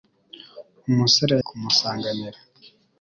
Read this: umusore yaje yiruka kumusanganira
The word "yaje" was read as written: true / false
false